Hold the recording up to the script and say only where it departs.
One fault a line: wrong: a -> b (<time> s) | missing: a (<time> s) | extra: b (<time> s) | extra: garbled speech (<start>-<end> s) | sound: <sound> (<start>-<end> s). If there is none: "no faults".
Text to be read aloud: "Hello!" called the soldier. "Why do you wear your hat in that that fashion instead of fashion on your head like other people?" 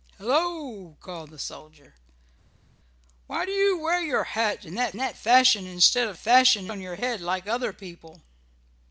no faults